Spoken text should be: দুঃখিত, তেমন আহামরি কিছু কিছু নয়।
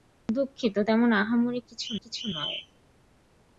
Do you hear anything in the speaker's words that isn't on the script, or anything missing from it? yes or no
no